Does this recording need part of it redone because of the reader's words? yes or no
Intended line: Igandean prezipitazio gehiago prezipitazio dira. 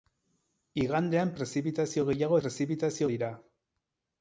no